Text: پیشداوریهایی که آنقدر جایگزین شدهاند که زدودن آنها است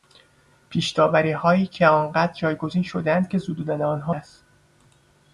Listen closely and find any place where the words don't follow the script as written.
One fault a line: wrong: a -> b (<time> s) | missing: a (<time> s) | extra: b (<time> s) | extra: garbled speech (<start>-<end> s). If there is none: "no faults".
no faults